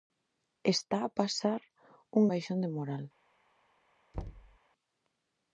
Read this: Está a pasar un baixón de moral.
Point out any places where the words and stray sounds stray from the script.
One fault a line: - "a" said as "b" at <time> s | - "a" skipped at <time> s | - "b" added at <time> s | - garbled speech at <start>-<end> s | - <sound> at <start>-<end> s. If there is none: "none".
- thud at 4.1-4.6 s